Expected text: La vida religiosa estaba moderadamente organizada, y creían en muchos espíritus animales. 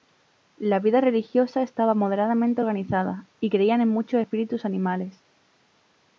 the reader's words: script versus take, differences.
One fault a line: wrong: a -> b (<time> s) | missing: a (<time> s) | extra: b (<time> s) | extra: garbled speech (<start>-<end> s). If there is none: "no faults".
no faults